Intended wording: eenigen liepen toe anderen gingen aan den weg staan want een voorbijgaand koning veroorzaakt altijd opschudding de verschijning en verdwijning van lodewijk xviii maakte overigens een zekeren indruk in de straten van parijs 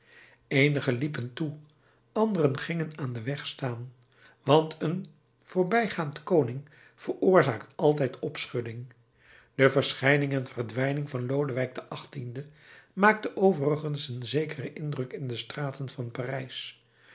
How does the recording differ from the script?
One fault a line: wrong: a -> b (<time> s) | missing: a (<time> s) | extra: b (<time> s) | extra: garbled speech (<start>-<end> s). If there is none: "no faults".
no faults